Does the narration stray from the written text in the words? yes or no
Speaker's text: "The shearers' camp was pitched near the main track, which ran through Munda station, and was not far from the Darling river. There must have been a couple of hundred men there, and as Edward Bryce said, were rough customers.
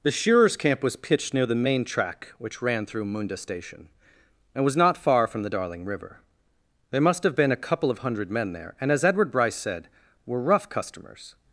no